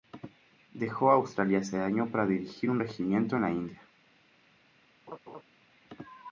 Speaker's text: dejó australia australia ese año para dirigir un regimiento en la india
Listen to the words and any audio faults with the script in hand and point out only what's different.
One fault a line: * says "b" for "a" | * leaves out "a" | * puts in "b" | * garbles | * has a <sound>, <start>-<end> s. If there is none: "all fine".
* leaves out "australia"
* has a laugh, 5.1-5.4 s